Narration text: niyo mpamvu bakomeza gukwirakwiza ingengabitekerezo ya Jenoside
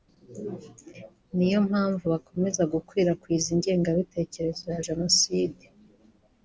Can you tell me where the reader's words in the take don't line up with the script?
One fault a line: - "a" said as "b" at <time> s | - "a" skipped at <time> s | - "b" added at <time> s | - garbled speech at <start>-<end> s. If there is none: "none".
none